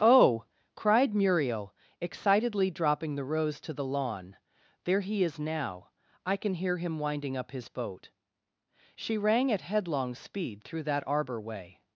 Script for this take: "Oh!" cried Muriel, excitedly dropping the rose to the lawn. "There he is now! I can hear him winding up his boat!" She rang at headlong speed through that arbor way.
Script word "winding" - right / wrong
right